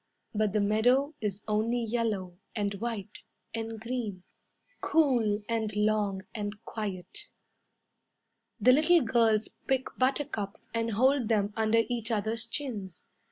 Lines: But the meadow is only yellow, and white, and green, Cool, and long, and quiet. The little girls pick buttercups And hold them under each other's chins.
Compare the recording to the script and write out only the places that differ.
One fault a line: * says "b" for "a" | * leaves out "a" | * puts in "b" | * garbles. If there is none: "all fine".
all fine